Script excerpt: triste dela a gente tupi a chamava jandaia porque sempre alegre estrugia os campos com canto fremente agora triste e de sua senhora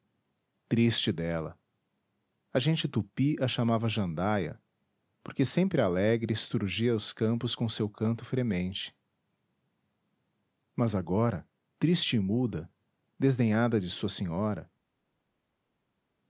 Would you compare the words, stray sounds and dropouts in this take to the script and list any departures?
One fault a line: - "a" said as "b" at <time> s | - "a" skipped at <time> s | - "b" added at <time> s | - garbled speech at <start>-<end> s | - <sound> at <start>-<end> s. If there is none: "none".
- "seu" added at 7.7 s
- "mas" added at 10.7 s
- "muda desdenhada" added at 12.2 s